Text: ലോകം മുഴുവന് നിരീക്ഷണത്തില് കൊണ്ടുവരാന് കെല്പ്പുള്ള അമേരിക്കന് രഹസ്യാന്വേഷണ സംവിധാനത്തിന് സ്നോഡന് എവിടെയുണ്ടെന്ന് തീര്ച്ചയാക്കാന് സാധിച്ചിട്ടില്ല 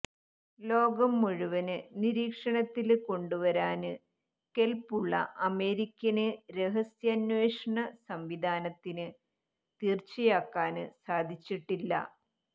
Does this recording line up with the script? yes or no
no